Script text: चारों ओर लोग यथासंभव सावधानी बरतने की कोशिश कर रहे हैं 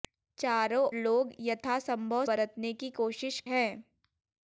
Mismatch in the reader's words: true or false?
true